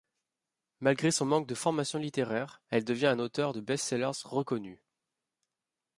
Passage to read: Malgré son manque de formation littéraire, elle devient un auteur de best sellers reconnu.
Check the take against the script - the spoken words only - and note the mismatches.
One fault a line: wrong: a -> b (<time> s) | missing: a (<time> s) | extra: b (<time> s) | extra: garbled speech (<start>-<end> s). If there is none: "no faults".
no faults